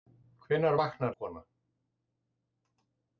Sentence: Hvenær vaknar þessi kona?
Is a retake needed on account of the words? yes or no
yes